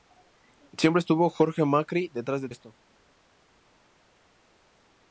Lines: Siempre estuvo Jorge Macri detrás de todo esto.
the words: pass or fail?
fail